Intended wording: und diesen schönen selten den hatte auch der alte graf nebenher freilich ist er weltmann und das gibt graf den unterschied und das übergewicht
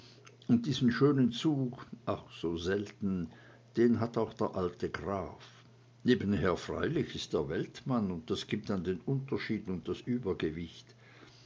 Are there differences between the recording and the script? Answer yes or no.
yes